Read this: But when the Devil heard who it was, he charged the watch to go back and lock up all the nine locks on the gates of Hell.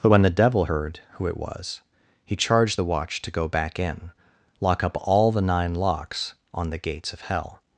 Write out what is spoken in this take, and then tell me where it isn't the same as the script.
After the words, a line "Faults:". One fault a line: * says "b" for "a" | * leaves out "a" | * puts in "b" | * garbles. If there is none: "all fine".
But when the Devil heard who it was, he charged the watch to go back in lock up all the nine locks on the gates of Hell.
Faults:
* says "in" for "and"